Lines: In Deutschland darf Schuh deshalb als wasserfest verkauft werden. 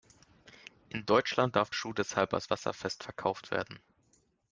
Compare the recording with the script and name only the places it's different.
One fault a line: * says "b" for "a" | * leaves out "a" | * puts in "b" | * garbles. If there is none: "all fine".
all fine